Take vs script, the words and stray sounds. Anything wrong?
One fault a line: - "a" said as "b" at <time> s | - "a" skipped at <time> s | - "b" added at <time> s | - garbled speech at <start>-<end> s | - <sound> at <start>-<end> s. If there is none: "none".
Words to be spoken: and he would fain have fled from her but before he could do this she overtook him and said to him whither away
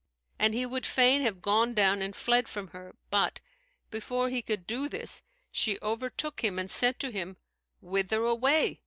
- "gone down and" added at 1.4 s